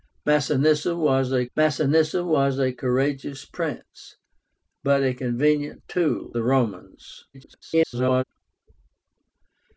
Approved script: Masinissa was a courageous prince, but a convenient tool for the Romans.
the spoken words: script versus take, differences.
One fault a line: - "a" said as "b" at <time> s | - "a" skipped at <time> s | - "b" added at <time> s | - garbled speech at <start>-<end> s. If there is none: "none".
- "masinissa was a" added at 1.6 s
- "for" skipped at 6.4 s
- garbled speech at 7.3-8.2 s